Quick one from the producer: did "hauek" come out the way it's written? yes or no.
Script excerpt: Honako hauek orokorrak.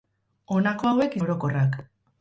yes